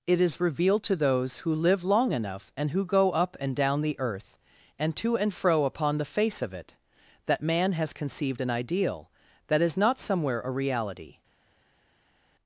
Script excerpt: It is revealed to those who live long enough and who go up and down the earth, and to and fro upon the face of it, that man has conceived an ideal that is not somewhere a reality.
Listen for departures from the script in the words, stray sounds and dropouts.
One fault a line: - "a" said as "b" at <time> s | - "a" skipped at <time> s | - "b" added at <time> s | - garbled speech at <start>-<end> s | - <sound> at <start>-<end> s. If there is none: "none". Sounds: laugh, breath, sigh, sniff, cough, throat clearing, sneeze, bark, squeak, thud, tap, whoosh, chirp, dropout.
none